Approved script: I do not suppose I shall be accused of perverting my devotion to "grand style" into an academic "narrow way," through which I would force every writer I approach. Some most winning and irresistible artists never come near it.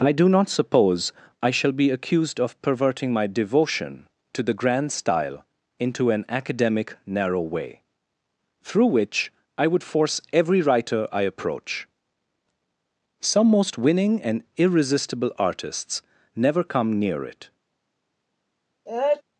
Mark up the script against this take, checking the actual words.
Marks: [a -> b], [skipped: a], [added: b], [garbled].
I do not suppose I shall be accused of perverting my devotion to [added: the] "grand style" into an academic "narrow way," through which I would force every writer I approach. Some most winning and irresistible artists never come near it.